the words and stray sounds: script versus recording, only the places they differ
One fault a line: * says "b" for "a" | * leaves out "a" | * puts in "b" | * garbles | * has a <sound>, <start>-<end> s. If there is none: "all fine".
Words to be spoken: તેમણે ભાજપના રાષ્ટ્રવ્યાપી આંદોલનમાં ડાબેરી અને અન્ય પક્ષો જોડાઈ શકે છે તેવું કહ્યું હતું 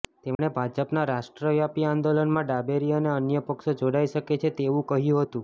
* has a dropout, 0.3-0.4 s